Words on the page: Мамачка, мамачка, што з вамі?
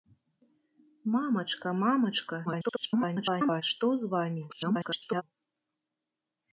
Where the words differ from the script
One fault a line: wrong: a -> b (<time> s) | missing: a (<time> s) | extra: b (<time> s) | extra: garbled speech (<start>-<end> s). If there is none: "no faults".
extra: garbled speech (2.4-3.6 s)
extra: garbled speech (4.5-5.2 s)